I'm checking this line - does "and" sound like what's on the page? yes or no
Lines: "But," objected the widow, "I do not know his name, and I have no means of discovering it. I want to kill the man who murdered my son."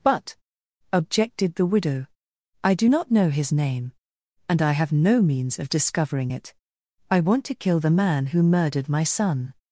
yes